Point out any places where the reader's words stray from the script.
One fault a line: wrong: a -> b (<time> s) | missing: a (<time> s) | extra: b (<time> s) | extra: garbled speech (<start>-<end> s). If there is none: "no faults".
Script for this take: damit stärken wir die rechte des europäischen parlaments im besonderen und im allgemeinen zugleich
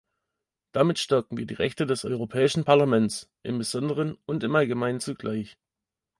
no faults